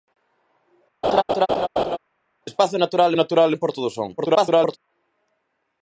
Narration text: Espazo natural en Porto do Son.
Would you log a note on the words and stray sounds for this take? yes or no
yes